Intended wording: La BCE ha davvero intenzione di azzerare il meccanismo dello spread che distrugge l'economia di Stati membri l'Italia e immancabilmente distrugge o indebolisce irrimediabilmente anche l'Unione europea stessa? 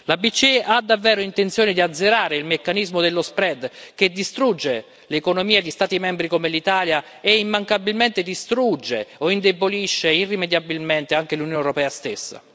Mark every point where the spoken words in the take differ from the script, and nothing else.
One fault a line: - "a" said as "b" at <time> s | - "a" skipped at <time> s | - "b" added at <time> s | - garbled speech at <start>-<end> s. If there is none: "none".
- "come" added at 6.3 s